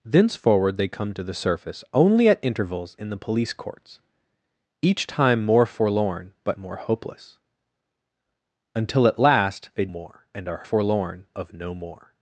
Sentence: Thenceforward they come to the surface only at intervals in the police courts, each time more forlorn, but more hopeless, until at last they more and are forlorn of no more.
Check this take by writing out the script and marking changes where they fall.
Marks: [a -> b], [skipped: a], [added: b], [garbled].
Thenceforward they come to the surface only at intervals in the police courts, each time more forlorn, but more hopeless, until at last they more and are forlorn of no more.